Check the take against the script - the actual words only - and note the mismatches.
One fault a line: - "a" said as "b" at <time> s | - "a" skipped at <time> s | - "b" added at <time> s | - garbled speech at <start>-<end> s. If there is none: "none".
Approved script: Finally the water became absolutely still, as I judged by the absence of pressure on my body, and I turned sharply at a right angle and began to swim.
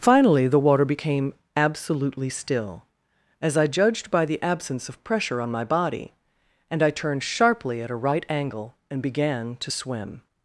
none